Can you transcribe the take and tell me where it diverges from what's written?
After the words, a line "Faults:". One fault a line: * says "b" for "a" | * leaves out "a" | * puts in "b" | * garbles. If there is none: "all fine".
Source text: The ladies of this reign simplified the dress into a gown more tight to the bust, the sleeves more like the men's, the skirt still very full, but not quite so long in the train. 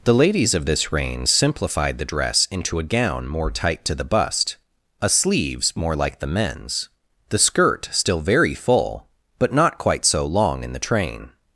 The ladies of this reign simplified the dress into a gown more tight to the bust, a sleeves more like the men's, the skirt still very full, but not quite so long in the train.
Faults:
* says "a" for "the"